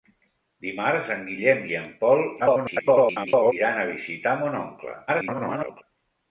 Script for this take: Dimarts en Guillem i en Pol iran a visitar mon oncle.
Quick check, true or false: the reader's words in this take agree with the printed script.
false